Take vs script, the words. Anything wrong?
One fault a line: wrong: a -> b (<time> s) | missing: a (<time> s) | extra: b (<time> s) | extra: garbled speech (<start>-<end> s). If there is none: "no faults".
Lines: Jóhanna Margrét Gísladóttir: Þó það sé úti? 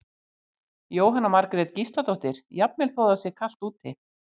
extra: Jafnvel (2.6 s)
extra: kalt (3.4 s)